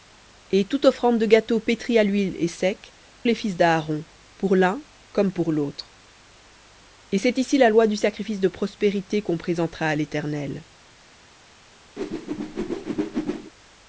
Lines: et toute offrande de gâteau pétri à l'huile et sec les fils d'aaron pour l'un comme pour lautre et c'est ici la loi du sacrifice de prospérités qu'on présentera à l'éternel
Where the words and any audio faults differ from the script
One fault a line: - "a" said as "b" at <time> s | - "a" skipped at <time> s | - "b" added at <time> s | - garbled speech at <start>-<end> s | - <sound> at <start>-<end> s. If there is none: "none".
- whoosh at 12.0-13.5 s